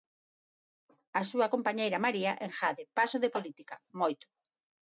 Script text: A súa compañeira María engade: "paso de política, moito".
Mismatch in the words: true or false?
false